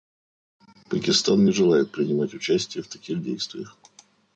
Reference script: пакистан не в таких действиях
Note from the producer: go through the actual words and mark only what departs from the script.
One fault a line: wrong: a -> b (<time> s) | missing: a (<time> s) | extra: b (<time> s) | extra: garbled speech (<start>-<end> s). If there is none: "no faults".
extra: желает принимать участие (1.5 s)